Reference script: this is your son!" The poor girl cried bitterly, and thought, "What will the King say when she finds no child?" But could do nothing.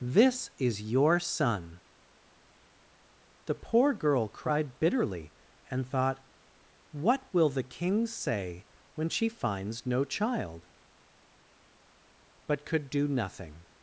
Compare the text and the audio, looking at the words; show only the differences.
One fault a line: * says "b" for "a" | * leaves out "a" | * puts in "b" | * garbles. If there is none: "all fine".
all fine